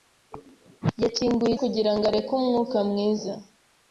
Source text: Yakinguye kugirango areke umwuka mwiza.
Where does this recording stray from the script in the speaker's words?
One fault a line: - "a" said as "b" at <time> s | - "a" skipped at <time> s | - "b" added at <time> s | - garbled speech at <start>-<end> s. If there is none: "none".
none